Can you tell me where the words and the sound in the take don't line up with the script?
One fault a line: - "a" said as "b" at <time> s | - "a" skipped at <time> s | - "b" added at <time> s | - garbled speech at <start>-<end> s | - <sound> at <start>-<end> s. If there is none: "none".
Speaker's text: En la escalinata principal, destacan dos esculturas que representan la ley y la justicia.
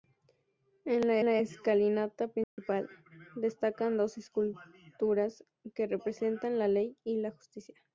- "la" added at 1.2 s
- dropout at 2.4-2.6 s